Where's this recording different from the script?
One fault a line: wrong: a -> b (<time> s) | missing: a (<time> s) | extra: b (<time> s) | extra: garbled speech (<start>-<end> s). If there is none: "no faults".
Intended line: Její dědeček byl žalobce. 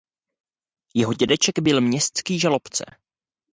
wrong: Její -> Jeho (0.9 s)
extra: městský (1.8 s)